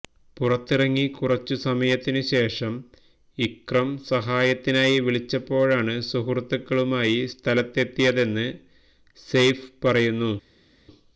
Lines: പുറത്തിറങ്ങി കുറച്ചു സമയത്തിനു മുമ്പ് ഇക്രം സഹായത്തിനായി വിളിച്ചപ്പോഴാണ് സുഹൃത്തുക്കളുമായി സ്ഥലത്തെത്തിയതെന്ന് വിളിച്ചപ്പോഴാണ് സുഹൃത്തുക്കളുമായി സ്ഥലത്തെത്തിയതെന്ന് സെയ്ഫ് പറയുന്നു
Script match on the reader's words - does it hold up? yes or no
no